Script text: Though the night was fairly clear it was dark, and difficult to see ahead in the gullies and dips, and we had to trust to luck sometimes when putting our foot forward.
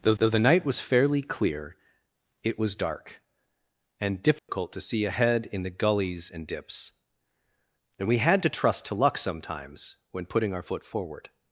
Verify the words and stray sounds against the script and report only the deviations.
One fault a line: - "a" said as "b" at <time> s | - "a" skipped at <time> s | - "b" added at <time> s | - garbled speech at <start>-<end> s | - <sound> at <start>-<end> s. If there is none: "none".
- "though" added at 0.2 s
- dropout at 4.4-4.5 s